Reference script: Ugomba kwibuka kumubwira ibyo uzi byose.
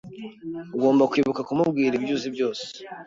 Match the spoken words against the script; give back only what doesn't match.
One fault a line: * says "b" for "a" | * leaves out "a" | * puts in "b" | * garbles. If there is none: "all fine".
all fine